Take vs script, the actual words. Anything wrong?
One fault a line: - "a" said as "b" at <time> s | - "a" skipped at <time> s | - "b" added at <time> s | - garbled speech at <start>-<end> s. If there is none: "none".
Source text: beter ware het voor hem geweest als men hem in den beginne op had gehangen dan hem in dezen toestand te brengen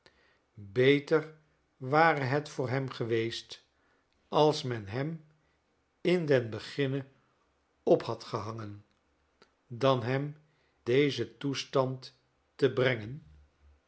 - "in" skipped at 10.4 s